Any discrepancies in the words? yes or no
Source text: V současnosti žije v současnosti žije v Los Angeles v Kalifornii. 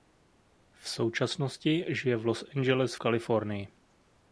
yes